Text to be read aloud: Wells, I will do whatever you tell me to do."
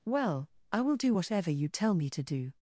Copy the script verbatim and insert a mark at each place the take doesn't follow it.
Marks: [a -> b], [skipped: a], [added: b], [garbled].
[Wells, -> Well] I will do whatever you tell me to do."